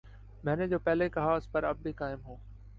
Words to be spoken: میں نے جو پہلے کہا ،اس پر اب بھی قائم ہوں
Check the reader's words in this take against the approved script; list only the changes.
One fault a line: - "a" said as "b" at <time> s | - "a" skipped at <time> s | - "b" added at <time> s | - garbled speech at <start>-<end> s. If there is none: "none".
none